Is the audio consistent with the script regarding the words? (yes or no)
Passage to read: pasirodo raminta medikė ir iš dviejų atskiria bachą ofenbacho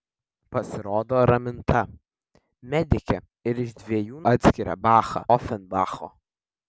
yes